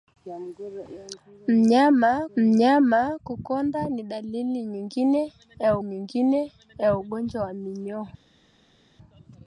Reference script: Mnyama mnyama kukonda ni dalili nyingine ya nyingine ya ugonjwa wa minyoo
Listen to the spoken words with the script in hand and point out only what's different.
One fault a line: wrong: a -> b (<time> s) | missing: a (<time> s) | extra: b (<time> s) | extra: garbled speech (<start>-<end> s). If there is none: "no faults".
no faults